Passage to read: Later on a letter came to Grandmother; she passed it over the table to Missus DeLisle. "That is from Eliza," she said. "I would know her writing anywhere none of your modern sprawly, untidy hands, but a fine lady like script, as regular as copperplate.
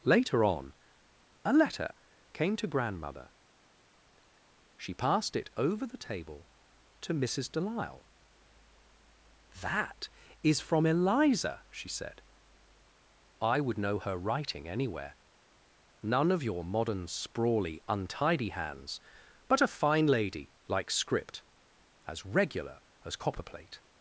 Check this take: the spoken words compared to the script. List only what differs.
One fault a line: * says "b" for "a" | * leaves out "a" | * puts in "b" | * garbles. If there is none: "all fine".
all fine